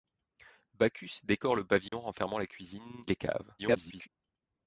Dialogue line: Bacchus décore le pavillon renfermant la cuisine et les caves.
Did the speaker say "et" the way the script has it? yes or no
no